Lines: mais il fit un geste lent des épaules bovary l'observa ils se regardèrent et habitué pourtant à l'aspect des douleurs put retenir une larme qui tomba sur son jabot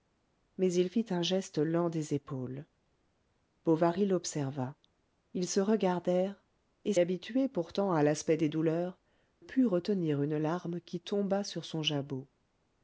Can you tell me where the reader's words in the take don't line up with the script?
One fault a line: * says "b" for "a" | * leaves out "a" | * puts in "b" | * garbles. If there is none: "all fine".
all fine